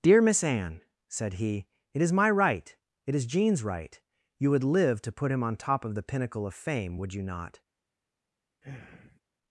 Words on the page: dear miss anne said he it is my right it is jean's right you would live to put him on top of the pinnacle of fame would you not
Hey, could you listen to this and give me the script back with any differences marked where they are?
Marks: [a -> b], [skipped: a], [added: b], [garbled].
dear miss anne said he it is my right it is jean's right you would live to put him on top of the pinnacle of fame would you not